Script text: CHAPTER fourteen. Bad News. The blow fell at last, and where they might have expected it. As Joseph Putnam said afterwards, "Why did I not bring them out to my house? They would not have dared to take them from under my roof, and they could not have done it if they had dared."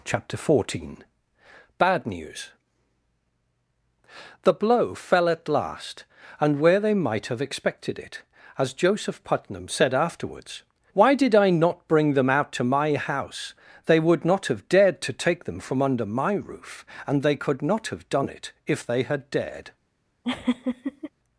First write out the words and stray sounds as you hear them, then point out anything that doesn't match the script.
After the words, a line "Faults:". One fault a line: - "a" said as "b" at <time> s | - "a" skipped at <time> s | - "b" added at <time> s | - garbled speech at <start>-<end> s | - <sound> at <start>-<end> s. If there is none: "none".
CHAPTER fourteen. Bad News. The blow fell at last, and where they might have expected it. As Joseph Putnam said afterwards, "Why did I not bring them out to my house? They would not have dared to take them from under my roof, and they could not have done it if they had dared."
Faults:
- laugh at 20.2-21.1 s